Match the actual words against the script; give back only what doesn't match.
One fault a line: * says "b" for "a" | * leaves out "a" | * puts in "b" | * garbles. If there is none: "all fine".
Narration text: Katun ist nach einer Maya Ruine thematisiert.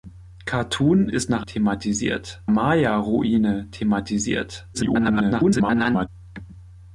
* says "thematisiert" for "einer"
* garbles